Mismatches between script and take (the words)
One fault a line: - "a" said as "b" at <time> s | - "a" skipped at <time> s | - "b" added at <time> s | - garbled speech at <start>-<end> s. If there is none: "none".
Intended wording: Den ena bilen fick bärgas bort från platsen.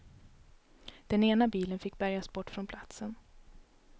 none